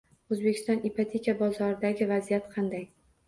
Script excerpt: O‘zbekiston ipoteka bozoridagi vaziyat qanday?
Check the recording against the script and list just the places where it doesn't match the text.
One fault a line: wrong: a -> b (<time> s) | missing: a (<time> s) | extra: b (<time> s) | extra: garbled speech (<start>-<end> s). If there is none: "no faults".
no faults